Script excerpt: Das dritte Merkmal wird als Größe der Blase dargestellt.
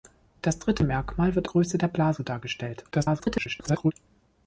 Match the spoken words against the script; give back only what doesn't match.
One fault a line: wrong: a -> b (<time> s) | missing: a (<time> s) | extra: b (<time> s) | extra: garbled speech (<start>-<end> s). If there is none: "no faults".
missing: als (1.5 s)
extra: garbled speech (2.9-3.9 s)